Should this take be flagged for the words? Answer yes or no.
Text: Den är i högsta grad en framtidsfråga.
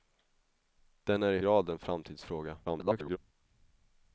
yes